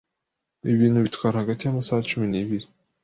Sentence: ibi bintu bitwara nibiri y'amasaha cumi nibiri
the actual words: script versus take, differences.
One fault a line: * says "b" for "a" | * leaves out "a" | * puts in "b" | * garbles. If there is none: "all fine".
* says "hagati" for "nibiri"